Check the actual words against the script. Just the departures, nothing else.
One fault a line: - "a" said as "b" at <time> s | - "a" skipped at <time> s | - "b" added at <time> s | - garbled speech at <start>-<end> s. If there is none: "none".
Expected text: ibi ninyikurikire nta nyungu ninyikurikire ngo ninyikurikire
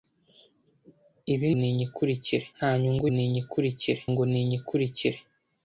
none